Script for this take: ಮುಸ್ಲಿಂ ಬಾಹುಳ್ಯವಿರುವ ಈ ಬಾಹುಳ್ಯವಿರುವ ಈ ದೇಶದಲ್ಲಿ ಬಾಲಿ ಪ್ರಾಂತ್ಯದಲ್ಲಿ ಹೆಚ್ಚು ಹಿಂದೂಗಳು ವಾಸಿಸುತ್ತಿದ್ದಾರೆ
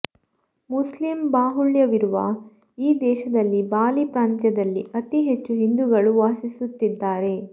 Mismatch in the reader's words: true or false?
true